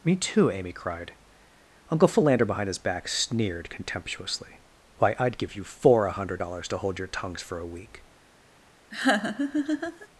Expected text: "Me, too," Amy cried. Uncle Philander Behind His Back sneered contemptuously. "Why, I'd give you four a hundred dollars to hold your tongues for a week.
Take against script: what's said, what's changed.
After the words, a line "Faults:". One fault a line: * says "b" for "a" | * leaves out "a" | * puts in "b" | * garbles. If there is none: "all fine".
"Me, too," Amy cried. Uncle Philander Behind His Back sneered contemptuously. "Why, I'd give you four a hundred dollars to hold your tongues for a week.
Faults:
all fine